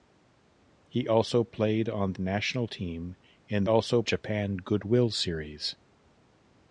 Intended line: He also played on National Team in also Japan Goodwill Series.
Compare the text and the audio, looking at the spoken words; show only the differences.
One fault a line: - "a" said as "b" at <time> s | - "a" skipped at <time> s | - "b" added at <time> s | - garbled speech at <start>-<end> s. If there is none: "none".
none